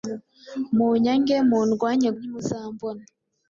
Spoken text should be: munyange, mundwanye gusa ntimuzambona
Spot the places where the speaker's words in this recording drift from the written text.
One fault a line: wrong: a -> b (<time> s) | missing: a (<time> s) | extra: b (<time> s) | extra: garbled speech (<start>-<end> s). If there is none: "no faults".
missing: gusa (2.1 s)